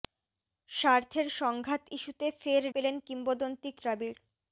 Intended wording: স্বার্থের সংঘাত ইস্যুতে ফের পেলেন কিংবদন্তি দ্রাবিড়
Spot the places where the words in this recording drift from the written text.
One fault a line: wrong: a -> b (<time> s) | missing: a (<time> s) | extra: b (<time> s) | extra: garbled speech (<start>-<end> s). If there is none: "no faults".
no faults